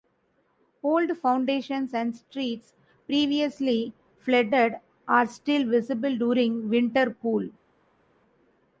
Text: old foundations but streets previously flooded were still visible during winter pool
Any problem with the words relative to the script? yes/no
yes